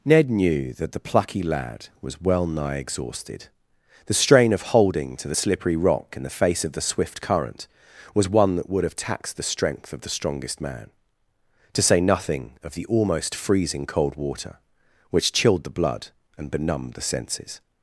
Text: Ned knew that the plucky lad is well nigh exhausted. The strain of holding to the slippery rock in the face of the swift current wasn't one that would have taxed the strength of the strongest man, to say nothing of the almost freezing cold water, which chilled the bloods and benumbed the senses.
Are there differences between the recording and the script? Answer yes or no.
yes